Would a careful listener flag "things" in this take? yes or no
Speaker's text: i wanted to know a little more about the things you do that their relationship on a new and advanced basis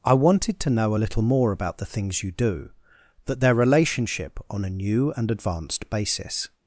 no